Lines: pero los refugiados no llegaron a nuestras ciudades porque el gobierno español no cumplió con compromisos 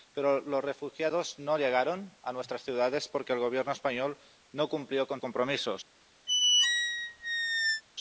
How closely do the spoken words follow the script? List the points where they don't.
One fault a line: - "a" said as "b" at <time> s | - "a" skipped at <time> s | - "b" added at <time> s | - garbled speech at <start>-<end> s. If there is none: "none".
none